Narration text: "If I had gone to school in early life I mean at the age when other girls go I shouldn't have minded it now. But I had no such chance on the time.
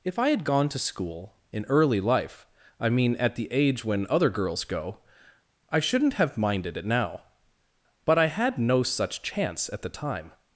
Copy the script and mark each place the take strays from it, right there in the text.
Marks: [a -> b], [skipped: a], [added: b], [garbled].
"If I had gone to school in early life I mean at the age when other girls go I shouldn't have minded it now. But I had no such chance [on -> at] the time.